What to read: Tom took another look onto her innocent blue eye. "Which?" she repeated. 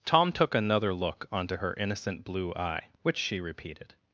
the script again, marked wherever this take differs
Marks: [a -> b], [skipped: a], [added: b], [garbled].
Tom took another look onto her innocent blue eye. "Which?" she repeated.